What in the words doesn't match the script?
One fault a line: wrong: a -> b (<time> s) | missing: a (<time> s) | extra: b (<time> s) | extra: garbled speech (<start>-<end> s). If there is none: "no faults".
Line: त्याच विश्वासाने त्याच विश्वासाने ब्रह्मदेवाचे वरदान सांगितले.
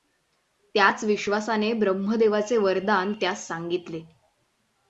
missing: त्याच विश्वासाने (1.7 s)
extra: त्यास (3.1 s)